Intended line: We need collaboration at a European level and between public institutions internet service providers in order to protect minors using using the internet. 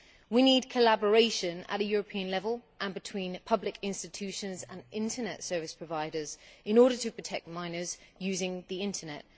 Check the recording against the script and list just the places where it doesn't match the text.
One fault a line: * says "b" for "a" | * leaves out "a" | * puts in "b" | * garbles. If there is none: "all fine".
* puts in "and"
* leaves out "using"